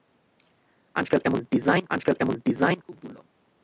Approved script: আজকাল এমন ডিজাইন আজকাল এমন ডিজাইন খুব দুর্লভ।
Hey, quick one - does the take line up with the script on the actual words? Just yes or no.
yes